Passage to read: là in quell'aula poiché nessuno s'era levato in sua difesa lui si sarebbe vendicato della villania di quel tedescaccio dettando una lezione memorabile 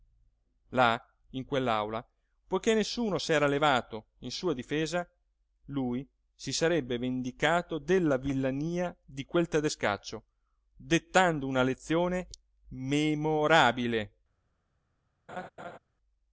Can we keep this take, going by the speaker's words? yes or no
yes